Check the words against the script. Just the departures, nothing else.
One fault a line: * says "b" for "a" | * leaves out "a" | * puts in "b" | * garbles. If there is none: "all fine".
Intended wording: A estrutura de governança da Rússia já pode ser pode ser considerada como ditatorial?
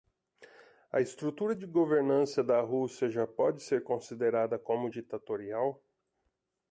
* leaves out "pode ser"